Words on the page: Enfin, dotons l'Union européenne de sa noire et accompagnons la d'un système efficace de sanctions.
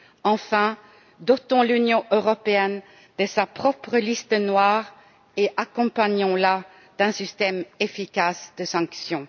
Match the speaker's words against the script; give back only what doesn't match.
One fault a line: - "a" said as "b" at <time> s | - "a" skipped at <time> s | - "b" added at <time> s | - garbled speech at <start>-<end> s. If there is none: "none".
- "propre liste" added at 3.5 s